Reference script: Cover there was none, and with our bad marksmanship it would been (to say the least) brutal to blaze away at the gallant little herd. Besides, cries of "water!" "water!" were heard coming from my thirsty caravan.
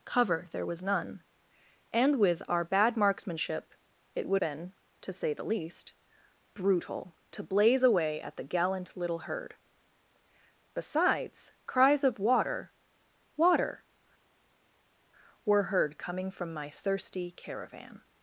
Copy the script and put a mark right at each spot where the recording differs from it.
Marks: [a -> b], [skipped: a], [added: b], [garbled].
Cover there was none, and with our bad marksmanship it would been (to say the least) brutal to blaze away at the gallant little herd. Besides, cries of "water!" "water!" were heard coming from my thirsty caravan.